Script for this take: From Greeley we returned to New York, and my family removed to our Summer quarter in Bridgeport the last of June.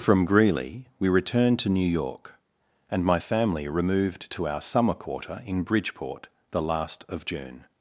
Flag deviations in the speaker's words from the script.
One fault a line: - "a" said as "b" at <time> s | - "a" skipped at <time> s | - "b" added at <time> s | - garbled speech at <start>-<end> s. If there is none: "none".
none